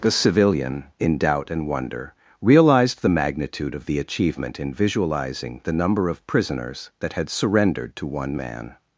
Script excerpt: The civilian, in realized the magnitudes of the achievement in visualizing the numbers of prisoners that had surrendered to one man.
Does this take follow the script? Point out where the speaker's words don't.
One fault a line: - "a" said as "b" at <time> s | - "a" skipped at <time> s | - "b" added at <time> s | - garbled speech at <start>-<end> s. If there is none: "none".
- "doubt and wonder" added at 1.2 s
- "magnitudes" said as "magnitude" at 3.1 s
- "numbers" said as "number" at 5.7 s